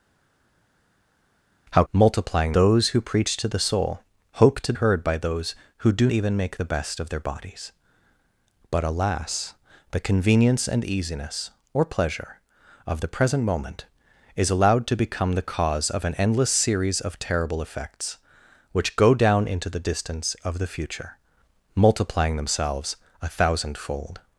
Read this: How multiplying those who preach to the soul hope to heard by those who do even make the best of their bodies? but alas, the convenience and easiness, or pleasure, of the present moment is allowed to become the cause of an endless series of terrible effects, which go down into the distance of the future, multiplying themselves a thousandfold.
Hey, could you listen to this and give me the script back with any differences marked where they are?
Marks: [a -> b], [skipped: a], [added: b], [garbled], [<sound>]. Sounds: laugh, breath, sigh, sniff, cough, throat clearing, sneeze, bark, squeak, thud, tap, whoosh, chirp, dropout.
How multiplying those who preach to the soul hope to heard by those who do even make the best of their bodies? but alas, the convenience and easiness, or pleasure, of the present moment is allowed to become the cause of an endless series of terrible effects, which go down into the distance of the future, multiplying themselves a thousandfold.